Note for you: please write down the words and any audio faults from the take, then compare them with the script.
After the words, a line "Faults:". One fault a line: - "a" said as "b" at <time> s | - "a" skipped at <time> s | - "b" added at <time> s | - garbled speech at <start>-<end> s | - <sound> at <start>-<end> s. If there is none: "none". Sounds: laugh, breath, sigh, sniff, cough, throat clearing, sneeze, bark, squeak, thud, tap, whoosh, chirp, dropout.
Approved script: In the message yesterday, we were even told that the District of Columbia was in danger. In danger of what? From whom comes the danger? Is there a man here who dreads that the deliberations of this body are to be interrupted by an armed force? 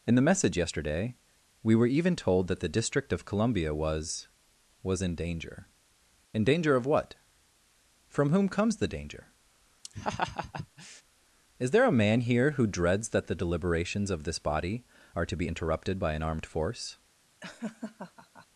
In the message yesterday, we were even told that the District of Columbia was was in danger. In danger of what? From whom comes the danger? Is there a man here who dreads that the deliberations of this body are to be interrupted by an armed force?
Faults:
- "was" added at 4.8 s
- laugh at 9.8-11.0 s
- laugh at 17.4-18.5 s